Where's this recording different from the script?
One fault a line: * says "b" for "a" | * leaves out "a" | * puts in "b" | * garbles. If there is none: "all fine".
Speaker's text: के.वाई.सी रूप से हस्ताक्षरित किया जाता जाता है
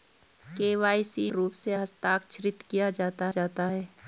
all fine